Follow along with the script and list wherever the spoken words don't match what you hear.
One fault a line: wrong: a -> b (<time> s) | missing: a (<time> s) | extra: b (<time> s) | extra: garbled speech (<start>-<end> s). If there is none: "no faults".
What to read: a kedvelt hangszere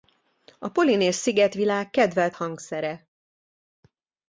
extra: polinéz szigetvilág (0.7 s)